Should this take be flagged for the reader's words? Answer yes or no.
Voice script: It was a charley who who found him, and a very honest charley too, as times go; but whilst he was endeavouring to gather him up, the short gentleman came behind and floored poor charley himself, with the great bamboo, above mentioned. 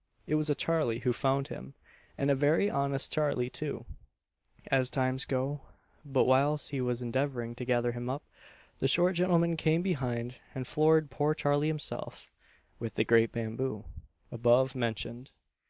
yes